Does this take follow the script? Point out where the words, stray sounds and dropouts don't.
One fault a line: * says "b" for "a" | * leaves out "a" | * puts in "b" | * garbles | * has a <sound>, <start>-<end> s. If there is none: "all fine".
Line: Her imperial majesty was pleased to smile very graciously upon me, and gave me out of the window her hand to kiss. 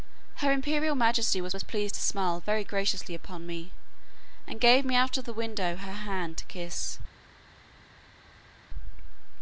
* puts in "was"